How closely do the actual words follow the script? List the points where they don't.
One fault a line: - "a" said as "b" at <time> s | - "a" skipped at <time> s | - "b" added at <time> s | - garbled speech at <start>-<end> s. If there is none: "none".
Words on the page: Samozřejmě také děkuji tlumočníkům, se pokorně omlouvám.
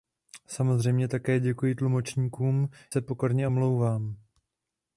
none